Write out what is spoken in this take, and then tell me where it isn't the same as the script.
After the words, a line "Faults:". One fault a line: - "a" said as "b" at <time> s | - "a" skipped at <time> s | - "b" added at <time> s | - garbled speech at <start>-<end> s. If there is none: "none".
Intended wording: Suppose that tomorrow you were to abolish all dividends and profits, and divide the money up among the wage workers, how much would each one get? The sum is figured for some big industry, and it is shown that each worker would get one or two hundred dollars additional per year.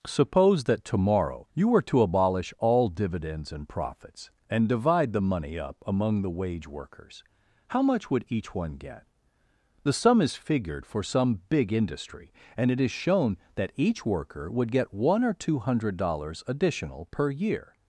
Suppose that tomorrow you were to abolish all dividends and profits, and divide the money up among the wage workers, how much would each one get? The sum is figured for some big industry, and it is shown that each worker would get one or two hundred dollars additional per year.
Faults:
none